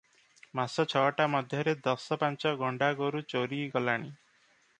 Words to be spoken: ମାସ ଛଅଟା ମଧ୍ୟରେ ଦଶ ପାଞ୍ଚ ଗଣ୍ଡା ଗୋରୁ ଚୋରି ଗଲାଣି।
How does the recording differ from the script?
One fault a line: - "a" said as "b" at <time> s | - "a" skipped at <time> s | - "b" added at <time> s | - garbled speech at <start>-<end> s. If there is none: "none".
none